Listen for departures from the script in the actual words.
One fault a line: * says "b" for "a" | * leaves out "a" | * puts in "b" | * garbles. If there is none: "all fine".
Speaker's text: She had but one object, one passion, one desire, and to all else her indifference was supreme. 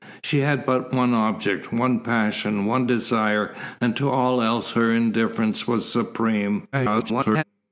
* garbles